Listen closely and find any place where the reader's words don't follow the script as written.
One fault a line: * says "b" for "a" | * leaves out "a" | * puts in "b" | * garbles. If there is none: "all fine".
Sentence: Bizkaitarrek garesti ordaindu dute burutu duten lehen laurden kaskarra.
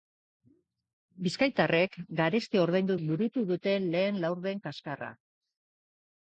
* leaves out "dute"